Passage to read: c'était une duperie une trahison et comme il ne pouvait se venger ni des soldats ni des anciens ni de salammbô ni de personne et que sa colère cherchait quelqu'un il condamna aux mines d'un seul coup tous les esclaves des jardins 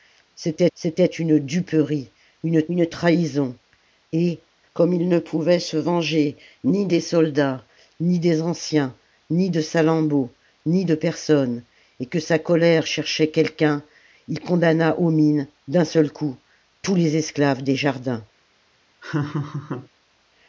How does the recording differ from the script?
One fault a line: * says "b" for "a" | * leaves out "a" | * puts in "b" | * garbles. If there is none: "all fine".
* puts in "c'était"
* puts in "une"